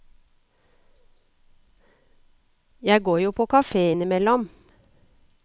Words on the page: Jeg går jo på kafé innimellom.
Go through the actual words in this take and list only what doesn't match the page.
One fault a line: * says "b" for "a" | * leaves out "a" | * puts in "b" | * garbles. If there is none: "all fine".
all fine